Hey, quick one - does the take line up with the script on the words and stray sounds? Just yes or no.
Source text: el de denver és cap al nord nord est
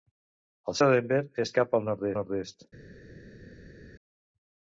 yes